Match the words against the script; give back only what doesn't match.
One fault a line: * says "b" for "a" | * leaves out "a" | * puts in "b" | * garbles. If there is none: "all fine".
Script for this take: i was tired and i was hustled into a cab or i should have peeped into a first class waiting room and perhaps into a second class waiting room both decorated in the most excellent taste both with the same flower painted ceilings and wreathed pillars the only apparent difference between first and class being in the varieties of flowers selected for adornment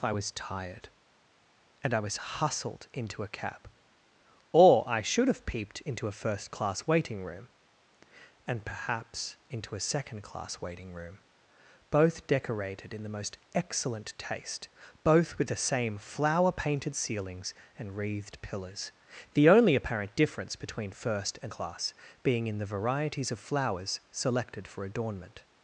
all fine